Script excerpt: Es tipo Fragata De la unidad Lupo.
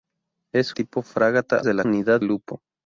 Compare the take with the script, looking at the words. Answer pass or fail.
pass